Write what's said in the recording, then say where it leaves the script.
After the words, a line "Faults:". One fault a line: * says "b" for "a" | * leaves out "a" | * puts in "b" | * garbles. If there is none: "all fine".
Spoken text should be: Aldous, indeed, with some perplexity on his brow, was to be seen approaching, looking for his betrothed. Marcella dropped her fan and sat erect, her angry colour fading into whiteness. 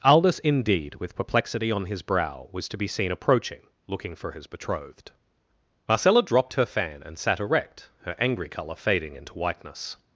Aldous, indeed, with perplexity on his brow, was to be seen approaching, looking for his betrothed. Marcella dropped her fan and sat erect, her angry colour fading into whiteness.
Faults:
* leaves out "some"